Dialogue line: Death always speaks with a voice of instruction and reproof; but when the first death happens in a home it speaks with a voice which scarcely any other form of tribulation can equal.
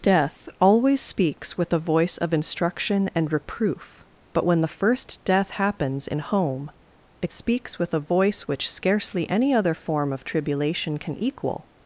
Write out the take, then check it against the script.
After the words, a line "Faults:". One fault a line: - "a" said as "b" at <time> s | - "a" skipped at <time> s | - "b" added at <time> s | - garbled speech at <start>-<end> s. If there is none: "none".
Death always speaks with a voice of instruction and reproof; but when the first death happens in home it speaks with a voice which scarcely any other form of tribulation can equal.
Faults:
- "a" skipped at 6.2 s